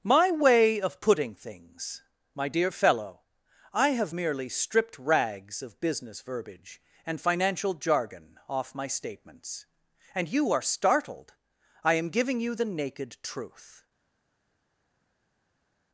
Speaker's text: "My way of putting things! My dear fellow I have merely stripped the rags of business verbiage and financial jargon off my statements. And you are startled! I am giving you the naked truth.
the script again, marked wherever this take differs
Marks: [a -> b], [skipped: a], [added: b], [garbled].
"My way of putting things! My dear fellow I have merely stripped [skipped: the] rags of business verbiage and financial jargon off my statements. And you are startled! I am giving you the naked truth.